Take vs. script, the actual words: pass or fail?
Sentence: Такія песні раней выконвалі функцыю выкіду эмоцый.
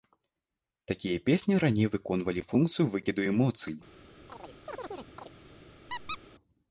pass